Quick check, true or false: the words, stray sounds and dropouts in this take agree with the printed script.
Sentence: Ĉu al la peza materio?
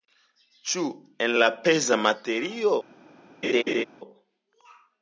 false